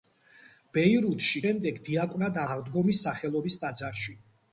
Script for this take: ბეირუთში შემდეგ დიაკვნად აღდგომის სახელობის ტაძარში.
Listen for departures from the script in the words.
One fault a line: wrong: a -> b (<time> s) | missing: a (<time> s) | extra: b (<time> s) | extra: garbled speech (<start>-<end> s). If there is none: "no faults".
no faults